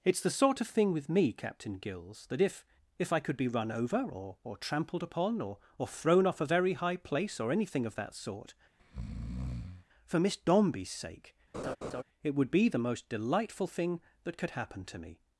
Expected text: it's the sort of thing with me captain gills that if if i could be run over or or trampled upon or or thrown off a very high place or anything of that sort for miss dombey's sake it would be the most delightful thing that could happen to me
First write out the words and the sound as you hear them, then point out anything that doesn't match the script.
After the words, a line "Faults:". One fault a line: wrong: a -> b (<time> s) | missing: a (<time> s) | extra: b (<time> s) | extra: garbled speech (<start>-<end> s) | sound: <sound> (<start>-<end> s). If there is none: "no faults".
it's the sort of thing with me captain gills that if if i could be run over or or trampled upon or or thrown off a very high place or anything of that sort for miss dombey's sake it would be the most delightful thing that could happen to me
Faults:
sound: breath (8.8-9.9 s)
sound: laugh (11.5-12.0 s)